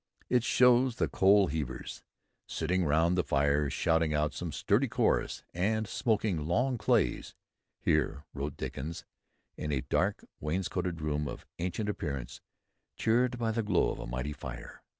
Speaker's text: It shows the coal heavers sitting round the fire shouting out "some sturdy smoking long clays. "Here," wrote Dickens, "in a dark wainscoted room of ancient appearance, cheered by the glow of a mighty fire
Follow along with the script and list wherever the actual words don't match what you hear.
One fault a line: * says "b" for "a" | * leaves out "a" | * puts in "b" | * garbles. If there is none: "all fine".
* puts in "chorus and"